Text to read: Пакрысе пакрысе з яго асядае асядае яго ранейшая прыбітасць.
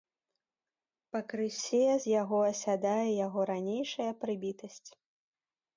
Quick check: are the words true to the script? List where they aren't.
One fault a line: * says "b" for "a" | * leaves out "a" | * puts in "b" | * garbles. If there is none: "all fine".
* leaves out "пакрысе"
* leaves out "асядае"